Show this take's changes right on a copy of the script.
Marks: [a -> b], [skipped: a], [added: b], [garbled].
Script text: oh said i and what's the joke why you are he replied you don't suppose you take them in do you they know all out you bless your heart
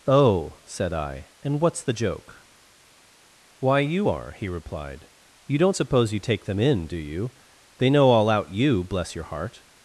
oh said i and what's the joke why you are he replied you don't suppose you take them in do you they know all out you bless your heart